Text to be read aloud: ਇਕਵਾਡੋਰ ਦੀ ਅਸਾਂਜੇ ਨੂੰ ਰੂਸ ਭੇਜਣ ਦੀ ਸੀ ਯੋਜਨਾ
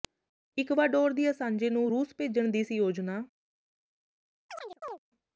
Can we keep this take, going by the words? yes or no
yes